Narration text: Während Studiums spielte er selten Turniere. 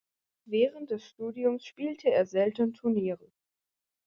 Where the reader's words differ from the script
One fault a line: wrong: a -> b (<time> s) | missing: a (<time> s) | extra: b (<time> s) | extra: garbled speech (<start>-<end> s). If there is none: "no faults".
extra: des (0.9 s)